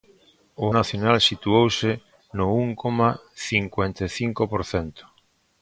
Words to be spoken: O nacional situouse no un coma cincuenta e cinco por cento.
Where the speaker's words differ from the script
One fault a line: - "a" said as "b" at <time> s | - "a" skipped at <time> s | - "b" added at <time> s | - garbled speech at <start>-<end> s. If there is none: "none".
none